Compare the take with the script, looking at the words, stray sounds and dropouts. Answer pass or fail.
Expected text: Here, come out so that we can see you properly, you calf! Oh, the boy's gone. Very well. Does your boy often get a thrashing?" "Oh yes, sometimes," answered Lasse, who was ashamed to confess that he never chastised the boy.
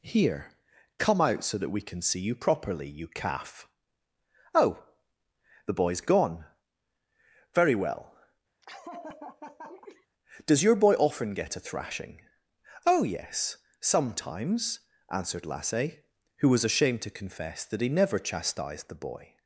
fail